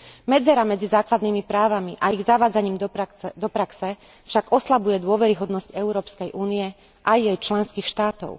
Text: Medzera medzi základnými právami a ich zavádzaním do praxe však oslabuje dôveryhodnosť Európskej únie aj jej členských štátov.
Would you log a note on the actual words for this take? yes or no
no